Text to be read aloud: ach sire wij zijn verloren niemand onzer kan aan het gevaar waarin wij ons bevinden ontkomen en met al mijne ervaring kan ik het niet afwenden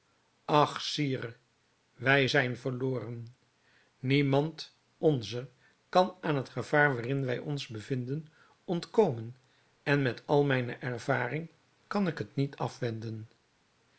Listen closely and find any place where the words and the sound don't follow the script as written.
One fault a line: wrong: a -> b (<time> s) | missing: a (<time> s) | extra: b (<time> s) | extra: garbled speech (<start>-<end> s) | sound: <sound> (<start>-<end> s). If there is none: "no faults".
no faults